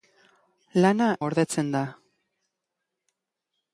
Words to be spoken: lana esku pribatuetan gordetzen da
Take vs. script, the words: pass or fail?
fail